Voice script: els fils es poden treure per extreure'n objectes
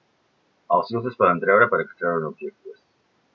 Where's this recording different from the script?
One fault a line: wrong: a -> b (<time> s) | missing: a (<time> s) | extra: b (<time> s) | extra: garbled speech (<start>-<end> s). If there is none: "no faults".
no faults